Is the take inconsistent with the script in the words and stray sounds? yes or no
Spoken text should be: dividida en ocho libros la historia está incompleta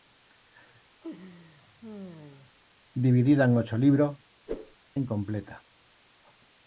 yes